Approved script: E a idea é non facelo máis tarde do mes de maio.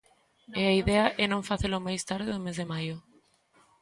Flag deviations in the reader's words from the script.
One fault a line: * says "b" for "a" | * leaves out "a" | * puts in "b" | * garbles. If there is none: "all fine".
all fine